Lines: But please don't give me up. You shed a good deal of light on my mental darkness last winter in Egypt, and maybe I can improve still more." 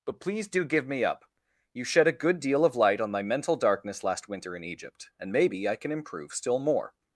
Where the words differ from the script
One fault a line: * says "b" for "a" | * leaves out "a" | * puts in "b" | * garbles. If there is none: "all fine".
* says "do" for "don't"